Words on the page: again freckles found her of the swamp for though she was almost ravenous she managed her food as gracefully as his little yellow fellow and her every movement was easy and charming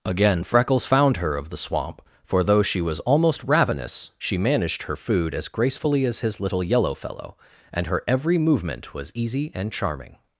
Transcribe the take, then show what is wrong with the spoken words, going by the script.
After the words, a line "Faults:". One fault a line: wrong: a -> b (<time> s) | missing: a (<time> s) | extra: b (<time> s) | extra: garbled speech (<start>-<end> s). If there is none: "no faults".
again freckles found her of the swamp for though she was almost ravenous she managed her food as gracefully as his little yellow fellow and her every movement was easy and charming
Faults:
no faults